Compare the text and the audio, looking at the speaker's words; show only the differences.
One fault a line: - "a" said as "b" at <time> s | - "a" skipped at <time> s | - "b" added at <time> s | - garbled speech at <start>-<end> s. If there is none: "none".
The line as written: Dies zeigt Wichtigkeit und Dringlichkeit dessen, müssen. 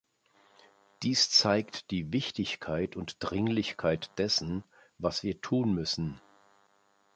- "die" added at 1.9 s
- "was wir tun" added at 5.0 s